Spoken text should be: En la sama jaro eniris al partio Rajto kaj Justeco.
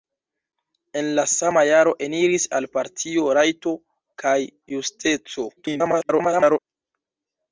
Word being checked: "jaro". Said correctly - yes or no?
yes